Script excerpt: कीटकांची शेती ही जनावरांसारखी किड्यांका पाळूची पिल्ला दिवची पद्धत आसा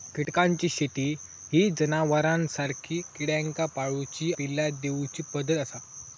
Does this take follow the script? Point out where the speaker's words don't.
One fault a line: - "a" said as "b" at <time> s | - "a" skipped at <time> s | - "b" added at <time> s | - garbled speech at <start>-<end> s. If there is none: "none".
none